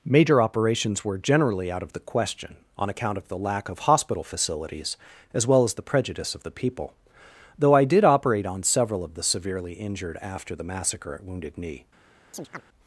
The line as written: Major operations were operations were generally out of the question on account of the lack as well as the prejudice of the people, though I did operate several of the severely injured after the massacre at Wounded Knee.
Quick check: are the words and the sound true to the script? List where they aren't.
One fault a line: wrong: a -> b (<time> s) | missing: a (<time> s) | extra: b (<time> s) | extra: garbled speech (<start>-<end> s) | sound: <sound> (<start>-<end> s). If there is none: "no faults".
missing: operations were (1.2 s)
extra: of hospital facilities (3.7 s)
extra: on (8.5 s)
sound: chirp (12.3-12.6 s)